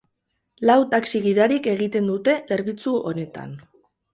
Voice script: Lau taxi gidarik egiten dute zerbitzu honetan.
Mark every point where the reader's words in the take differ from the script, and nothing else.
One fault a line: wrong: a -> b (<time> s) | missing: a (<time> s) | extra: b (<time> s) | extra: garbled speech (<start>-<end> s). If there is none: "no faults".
no faults